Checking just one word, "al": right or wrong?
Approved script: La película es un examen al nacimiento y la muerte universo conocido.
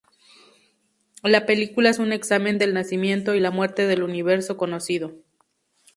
wrong